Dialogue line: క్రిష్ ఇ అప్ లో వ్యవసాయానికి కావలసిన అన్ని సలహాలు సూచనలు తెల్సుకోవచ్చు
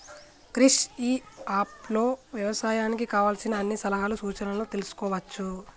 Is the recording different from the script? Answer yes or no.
no